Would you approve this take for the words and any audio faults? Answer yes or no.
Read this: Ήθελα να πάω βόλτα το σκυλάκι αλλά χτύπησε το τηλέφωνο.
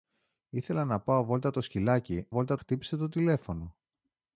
no